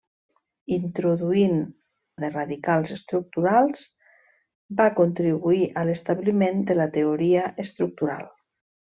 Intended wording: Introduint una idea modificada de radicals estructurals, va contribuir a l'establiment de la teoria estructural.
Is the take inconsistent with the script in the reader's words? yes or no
yes